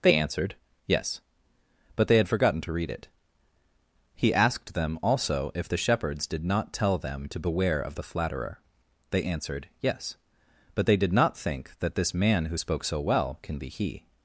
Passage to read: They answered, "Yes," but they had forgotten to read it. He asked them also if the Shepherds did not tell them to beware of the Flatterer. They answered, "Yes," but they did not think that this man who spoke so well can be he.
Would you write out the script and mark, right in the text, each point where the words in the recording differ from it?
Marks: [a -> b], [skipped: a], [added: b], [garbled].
They answered, "Yes," but they had forgotten to read it. He asked them also if the Shepherds did not tell them to beware of the Flatterer. They answered, "Yes," but they did not think that this man who spoke so well can be he.